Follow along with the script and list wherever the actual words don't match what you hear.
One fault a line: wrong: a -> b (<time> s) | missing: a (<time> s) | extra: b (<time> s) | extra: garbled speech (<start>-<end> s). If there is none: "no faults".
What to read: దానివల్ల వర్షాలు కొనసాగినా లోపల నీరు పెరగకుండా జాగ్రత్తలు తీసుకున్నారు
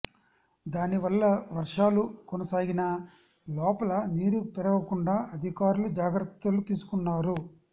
extra: అధికారులు (5.4 s)